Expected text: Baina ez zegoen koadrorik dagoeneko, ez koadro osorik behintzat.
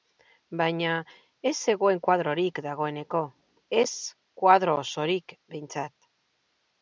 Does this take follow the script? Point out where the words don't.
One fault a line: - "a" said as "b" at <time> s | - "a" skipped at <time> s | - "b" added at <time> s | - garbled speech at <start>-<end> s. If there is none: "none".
none